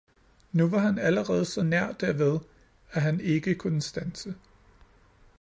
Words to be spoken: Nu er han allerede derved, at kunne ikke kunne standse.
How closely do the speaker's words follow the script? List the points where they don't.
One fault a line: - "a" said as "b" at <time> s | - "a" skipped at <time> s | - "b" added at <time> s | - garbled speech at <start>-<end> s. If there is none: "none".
- "er" said as "var" at 0.7 s
- "så nær" added at 1.4 s
- "kunne" said as "han" at 3.0 s